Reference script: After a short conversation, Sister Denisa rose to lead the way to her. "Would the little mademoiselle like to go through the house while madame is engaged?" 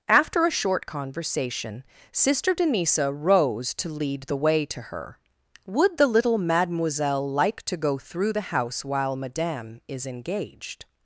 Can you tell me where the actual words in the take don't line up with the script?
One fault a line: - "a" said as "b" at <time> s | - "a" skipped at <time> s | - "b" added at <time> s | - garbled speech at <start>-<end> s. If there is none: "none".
none